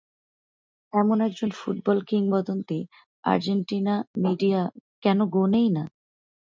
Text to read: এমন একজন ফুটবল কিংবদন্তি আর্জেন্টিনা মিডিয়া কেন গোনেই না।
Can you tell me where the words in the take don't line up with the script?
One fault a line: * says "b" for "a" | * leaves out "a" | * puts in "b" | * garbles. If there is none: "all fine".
all fine